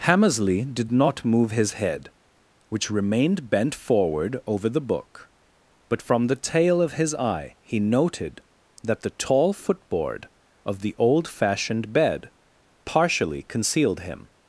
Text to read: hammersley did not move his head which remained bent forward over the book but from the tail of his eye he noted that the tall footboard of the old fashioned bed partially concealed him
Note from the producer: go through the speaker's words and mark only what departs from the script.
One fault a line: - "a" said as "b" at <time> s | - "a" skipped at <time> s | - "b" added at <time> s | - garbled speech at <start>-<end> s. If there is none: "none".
none